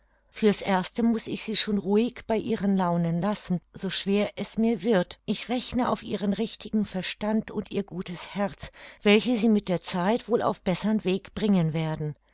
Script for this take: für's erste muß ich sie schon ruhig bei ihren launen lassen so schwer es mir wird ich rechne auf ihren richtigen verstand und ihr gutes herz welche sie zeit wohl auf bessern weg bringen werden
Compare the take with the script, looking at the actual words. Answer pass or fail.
fail